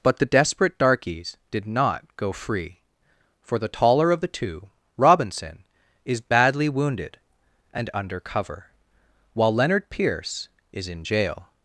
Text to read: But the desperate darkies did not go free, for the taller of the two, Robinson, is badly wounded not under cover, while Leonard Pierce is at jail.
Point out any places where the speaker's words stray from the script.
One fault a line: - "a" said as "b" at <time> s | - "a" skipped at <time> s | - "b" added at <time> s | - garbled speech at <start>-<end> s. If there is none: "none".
- "not" said as "and" at 7.7 s
- "at" said as "in" at 10.9 s